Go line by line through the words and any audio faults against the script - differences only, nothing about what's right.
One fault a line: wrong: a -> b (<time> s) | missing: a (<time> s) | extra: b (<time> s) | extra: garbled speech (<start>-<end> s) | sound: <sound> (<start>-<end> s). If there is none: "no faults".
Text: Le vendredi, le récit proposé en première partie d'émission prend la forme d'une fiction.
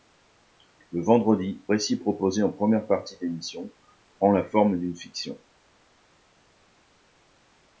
missing: le (1.6 s)